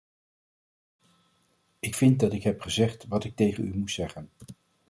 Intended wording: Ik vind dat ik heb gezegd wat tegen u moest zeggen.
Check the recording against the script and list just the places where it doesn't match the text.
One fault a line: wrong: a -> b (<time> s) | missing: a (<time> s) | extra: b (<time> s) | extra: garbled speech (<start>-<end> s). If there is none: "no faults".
extra: ik (3.2 s)